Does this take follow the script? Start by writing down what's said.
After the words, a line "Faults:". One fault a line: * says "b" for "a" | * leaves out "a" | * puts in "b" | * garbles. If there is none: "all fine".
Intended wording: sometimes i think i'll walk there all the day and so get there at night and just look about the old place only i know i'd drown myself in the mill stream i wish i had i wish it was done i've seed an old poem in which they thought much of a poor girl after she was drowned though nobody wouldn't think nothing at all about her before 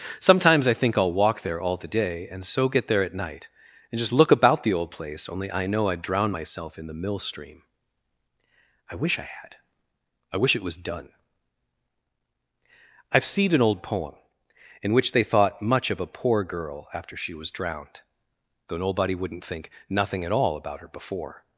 sometimes i think i'll walk there all the day and so get there at night and just look about the old place only i know i'd drown myself in the mill stream i wish i had i wish it was done i've seen an old poem in which they thought much of a poor girl after she was drowned though nobody wouldn't think nothing at all about her before
Faults:
* says "seen" for "seed"